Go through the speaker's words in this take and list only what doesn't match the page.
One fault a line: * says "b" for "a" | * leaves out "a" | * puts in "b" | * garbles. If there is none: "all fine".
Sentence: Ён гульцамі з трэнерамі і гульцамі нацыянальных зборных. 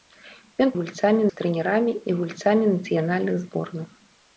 all fine